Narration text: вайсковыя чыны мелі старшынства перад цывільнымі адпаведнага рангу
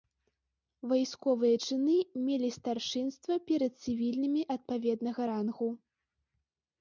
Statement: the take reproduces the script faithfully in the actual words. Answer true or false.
true